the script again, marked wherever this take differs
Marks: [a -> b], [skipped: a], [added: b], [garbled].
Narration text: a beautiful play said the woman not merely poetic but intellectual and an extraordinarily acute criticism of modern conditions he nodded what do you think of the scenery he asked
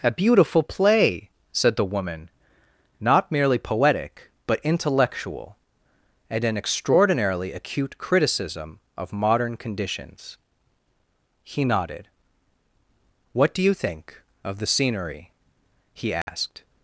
a beautiful play said the woman not merely poetic but intellectual and an extraordinarily acute criticism of modern conditions he nodded what do you think of the scenery he asked